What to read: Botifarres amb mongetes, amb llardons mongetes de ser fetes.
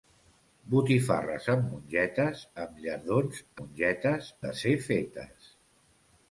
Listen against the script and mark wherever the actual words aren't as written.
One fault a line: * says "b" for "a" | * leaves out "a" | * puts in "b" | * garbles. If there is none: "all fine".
all fine